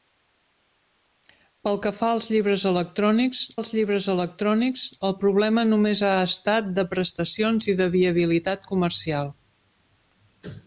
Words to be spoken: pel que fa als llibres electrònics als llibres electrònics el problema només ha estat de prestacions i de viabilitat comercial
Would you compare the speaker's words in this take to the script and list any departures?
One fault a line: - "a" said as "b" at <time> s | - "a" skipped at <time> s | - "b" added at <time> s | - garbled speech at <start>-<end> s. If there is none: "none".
none